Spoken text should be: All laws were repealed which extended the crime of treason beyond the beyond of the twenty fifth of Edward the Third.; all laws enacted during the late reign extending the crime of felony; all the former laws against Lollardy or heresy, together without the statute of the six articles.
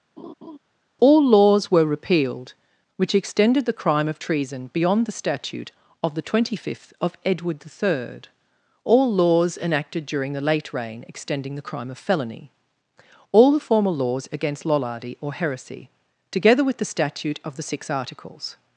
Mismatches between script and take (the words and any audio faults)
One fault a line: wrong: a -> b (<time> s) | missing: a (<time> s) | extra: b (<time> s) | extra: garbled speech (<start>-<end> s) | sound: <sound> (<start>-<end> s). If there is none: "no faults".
sound: laugh (0.2-0.6 s)
wrong: beyond -> statute (5.1 s)
wrong: without -> with (16.6 s)